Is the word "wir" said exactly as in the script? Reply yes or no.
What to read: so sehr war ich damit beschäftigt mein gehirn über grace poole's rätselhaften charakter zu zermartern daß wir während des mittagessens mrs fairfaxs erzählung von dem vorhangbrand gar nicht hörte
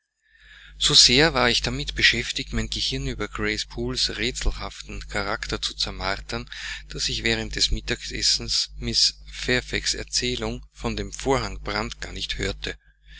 no